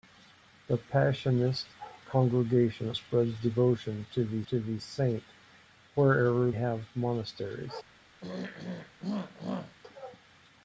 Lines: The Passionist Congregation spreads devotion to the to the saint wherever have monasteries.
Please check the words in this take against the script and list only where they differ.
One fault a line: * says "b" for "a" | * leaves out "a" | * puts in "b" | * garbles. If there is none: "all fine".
all fine